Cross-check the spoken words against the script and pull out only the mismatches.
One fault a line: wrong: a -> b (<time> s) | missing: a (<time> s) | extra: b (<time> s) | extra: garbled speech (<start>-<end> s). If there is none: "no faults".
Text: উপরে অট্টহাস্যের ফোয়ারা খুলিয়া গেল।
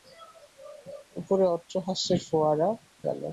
missing: খুলিয়া (2.7 s)